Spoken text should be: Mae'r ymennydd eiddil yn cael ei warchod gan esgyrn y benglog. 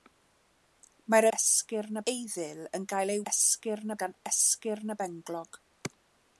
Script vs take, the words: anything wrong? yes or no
yes